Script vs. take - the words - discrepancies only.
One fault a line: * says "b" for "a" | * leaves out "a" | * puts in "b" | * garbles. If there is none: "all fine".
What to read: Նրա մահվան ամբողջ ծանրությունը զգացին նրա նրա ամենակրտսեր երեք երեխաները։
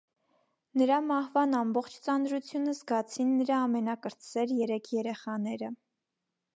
* leaves out "նրա"